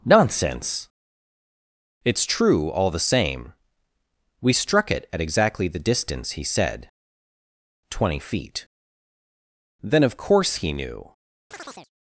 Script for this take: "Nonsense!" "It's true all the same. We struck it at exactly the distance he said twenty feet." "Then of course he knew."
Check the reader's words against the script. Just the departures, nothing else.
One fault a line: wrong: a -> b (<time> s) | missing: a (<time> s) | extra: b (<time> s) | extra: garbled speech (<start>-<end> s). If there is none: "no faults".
no faults